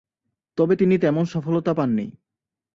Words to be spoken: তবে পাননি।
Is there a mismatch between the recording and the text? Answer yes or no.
yes